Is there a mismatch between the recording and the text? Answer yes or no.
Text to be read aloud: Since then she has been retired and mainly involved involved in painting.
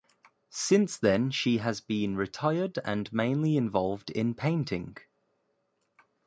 yes